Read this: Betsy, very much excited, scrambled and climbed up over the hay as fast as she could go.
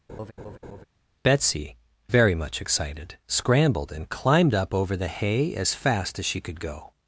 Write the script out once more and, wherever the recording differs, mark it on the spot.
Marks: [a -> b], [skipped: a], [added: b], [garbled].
Betsy, very much excited, scrambled and climbed up over the hay as fast as she could go.